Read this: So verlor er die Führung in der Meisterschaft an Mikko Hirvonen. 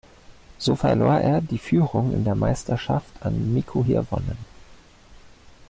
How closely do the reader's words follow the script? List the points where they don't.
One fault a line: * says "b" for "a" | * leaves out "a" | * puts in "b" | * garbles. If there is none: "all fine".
all fine